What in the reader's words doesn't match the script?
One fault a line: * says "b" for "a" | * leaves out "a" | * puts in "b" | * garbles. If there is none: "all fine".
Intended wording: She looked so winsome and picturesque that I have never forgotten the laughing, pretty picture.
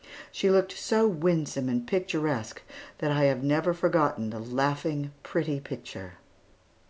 all fine